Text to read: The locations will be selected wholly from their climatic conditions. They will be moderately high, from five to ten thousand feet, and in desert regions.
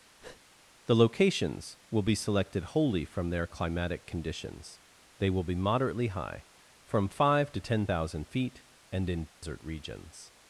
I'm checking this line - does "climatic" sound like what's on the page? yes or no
yes